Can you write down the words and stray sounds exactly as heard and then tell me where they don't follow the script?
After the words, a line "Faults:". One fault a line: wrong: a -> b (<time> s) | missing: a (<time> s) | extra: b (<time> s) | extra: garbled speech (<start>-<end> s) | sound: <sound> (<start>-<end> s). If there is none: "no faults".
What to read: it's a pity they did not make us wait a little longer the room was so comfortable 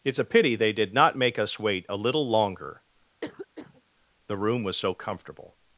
it's a pity they did not make us wait a little longer the room was so comfortable
Faults:
sound: cough (3.2-3.8 s)